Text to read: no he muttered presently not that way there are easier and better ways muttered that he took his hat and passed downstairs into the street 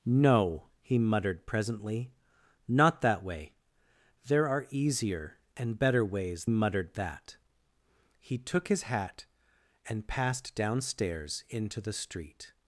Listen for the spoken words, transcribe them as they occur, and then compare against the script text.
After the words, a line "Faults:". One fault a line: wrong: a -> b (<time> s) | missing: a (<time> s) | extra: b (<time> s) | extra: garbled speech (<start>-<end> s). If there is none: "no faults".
no he muttered presently not that way there are easier and better ways muttered that he took his hat and passed downstairs into the street
Faults:
no faults